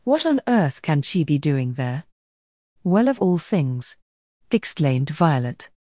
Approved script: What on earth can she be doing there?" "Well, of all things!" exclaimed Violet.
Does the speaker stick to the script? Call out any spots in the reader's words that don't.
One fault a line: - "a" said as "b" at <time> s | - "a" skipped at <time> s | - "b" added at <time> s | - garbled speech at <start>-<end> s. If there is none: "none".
none